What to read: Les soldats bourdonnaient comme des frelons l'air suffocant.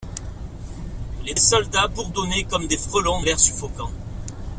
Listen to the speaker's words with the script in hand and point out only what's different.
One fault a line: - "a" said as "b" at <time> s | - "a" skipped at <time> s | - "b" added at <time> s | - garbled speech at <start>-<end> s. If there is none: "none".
none